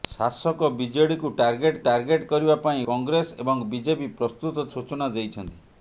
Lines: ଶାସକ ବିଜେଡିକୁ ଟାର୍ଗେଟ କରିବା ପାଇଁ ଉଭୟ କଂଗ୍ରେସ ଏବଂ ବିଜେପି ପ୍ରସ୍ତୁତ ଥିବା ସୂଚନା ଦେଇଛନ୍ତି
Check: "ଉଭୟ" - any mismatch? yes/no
yes